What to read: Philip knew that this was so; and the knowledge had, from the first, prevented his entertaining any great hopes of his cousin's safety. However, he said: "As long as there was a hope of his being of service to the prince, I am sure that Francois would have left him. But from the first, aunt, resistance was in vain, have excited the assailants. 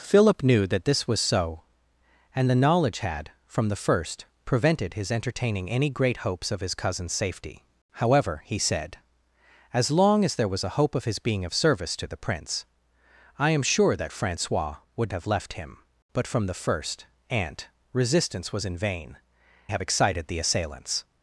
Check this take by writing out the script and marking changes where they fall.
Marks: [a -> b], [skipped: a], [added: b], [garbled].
Philip knew that this was so; and the knowledge had, from the first, prevented his entertaining any great hopes of his cousin's safety. However, he said: "As long as there was a hope of his being of service to the prince, I am sure that Francois would have left him. But from the first, aunt, resistance was in vain, have excited the assailants.